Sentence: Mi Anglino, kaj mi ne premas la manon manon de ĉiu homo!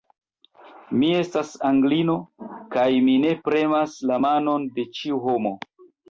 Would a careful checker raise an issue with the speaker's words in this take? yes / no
yes